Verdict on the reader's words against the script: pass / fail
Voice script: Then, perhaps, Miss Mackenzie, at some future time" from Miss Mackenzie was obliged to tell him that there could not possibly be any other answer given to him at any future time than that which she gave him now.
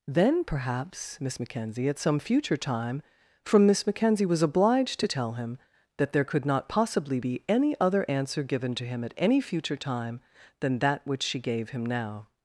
pass